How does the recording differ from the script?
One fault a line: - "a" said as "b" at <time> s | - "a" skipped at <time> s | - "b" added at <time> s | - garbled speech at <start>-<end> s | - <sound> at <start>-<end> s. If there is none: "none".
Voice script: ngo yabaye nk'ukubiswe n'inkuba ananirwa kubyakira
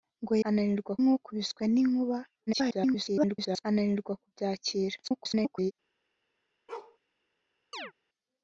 - "yabaye" said as "ananirwa" at 0.5 s
- garbled speech at 2.5-3.6 s
- garbled speech at 5.0-5.7 s
- bark at 6.7-7.0 s
- chirp at 7.7-7.9 s